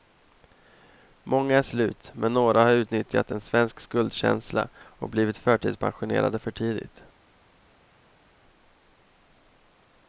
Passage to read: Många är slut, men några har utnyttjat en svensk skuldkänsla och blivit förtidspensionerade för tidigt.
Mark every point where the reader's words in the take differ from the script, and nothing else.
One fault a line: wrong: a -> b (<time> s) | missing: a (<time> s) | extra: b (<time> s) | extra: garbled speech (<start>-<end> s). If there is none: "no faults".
no faults